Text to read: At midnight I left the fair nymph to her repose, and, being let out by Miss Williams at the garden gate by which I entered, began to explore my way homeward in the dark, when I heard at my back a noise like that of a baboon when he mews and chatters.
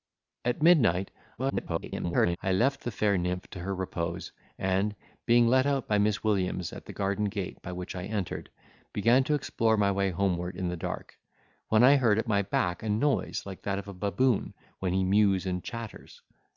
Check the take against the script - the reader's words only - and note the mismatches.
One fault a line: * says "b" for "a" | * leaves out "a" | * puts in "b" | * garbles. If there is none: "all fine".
* garbles